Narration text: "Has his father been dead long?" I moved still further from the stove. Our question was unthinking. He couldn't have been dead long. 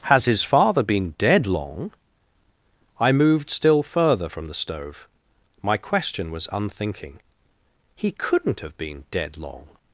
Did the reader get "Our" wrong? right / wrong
wrong